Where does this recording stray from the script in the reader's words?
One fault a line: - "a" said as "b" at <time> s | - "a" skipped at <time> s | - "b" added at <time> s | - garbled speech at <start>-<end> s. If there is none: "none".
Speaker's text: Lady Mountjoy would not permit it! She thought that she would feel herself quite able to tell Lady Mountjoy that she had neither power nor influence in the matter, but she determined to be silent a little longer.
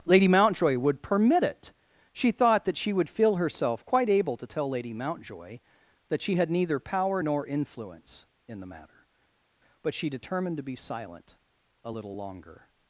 - "not" skipped at 1.0 s